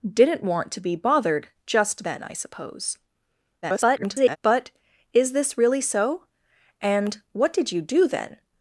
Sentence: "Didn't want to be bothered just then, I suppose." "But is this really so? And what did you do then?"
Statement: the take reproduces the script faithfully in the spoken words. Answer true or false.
false